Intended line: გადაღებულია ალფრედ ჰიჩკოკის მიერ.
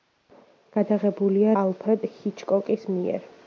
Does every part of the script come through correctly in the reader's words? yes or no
yes